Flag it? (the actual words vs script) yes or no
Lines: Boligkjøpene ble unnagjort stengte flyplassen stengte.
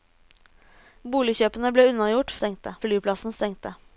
no